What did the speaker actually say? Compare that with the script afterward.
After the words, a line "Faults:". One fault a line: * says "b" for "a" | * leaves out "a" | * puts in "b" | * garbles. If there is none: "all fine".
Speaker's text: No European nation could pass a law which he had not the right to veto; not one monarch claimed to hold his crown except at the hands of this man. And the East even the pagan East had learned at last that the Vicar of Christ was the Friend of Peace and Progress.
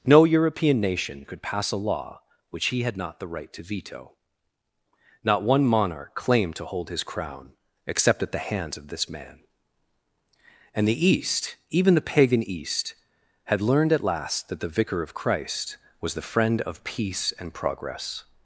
No European nation could pass a law which he had not the right to veto; not one monarch claimed to hold his crown except at the hands of this man. And the East even the pagan East had learned at last that the Vicar of Christ was the Friend of Peace and Progress.
Faults:
all fine